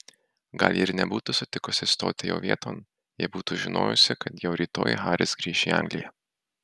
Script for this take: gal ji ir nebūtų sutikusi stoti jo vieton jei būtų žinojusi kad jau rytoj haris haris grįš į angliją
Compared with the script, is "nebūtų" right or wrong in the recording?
right